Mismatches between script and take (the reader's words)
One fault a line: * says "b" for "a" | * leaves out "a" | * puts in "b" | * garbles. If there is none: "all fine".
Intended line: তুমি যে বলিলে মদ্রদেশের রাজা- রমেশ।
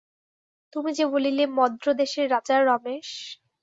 all fine